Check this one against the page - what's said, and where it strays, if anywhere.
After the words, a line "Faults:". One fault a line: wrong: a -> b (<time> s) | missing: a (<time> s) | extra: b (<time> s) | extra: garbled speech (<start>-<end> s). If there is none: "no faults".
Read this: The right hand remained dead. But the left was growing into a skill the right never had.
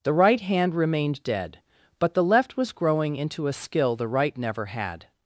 The right hand remained dead. But the left was growing into a skill the right never had.
Faults:
no faults